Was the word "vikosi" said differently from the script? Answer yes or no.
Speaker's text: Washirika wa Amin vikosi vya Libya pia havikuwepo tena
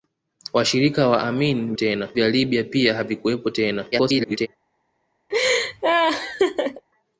yes